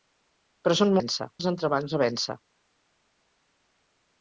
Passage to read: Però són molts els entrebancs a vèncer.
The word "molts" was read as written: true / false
false